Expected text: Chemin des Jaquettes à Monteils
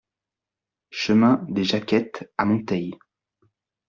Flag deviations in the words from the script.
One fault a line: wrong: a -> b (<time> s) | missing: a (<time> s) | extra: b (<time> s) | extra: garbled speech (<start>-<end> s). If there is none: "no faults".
no faults